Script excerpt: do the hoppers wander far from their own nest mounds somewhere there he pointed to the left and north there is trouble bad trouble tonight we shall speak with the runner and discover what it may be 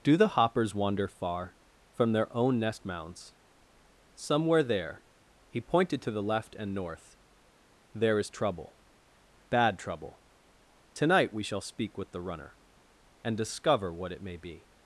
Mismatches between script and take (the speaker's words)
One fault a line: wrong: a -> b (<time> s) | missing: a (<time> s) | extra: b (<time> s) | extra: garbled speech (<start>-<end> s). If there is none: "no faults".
no faults